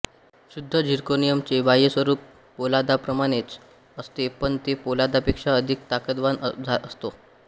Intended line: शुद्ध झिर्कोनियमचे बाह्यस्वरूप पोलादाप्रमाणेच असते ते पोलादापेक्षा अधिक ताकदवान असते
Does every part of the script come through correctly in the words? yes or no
no